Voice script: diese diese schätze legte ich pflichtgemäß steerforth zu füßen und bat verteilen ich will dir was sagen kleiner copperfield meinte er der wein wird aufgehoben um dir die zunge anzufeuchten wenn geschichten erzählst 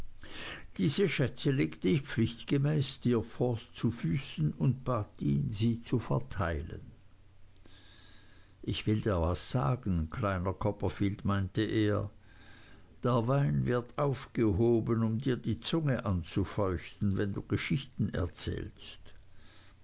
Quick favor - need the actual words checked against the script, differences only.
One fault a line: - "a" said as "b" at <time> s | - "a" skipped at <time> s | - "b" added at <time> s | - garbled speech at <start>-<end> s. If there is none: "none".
- "diese" skipped at 1.1 s
- "ihn sie zu" added at 5.2 s
- "du" added at 17.3 s